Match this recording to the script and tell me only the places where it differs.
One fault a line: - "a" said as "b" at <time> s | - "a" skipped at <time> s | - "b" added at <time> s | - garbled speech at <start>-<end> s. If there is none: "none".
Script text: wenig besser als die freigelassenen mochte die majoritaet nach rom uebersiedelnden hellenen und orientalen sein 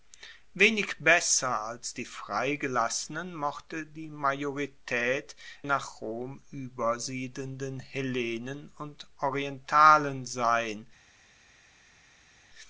none